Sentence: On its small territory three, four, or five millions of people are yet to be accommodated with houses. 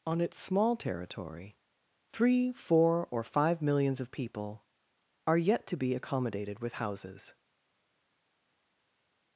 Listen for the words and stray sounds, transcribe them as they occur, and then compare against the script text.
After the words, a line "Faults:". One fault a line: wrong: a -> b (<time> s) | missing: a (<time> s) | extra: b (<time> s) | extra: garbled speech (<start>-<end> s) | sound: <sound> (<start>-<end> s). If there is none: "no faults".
On its small territory three, four, or five millions of people are yet to be accommodated with houses.
Faults:
no faults